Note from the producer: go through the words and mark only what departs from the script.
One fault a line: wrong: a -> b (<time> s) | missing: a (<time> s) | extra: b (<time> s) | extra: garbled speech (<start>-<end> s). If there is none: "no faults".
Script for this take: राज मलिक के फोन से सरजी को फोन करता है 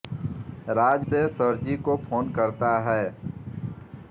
missing: मलिक के फोन (1.1 s)